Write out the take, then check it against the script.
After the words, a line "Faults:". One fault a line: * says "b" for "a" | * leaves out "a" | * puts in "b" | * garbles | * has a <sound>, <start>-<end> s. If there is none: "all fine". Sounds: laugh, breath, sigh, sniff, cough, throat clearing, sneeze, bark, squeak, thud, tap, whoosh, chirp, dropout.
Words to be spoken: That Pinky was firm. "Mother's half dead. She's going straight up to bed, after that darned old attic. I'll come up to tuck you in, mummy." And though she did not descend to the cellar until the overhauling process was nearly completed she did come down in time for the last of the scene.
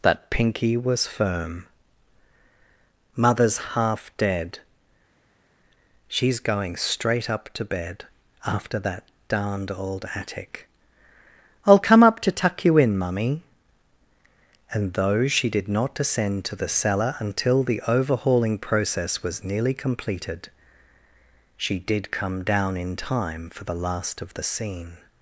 That Pinky was firm. "Mother's half dead. She's going straight up to bed, after that darned old attic. I'll come up to tuck you in, mummy." And though she did not descend to the cellar until the overhauling process was nearly completed she did come down in time for the last of the scene.
Faults:
all fine